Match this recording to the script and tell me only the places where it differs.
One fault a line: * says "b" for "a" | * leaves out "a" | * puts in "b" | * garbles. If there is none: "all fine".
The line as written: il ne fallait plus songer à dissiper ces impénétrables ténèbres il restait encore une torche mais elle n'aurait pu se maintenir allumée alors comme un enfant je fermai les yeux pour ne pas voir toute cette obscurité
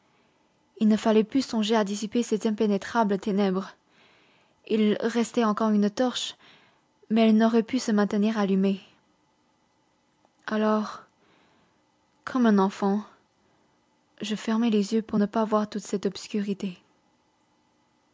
all fine